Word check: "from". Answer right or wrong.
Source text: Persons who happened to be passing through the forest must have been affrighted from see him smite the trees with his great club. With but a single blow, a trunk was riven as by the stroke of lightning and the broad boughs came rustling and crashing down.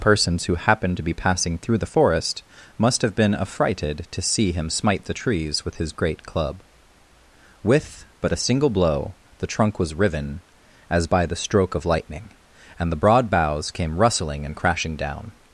wrong